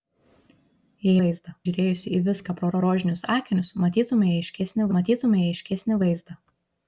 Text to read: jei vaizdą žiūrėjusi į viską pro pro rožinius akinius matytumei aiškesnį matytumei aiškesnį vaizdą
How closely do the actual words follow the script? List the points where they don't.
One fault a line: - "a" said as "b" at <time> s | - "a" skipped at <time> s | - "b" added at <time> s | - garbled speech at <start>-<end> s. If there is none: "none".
none